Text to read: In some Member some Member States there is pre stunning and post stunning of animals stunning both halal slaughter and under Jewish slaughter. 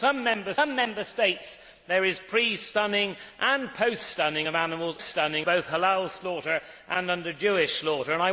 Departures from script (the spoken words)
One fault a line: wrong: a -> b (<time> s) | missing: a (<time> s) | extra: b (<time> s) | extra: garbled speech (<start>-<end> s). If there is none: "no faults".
no faults